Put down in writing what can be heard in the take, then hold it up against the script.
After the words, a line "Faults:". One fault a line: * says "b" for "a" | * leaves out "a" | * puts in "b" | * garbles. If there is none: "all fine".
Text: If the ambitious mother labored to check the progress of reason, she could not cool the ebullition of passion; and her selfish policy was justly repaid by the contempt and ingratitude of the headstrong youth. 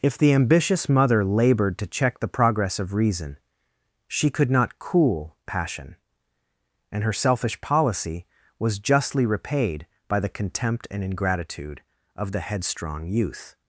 If the ambitious mother labored to check the progress of reason, she could not cool passion; and her selfish policy was justly repaid by the contempt and ingratitude of the headstrong youth.
Faults:
* leaves out "the ebullition of"